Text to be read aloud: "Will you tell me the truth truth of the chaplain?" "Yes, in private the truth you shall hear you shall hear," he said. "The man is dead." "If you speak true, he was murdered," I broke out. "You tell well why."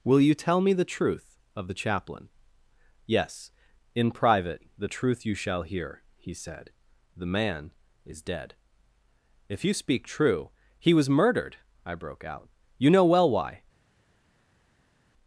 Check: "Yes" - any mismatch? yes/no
no